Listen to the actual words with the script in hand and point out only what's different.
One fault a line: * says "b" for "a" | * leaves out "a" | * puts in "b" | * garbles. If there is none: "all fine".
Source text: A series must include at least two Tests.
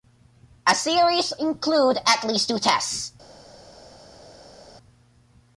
* leaves out "must"